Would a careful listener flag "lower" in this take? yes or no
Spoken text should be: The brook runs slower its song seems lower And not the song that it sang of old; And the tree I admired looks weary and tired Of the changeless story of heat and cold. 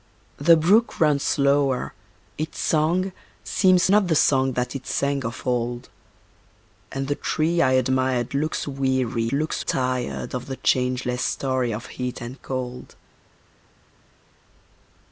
yes